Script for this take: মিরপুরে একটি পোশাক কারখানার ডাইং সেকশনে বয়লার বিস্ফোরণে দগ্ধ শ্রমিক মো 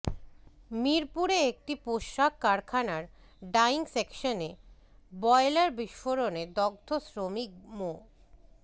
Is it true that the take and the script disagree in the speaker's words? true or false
false